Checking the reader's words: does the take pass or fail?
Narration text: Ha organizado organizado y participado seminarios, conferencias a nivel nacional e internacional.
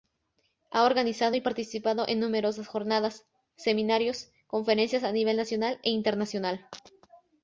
fail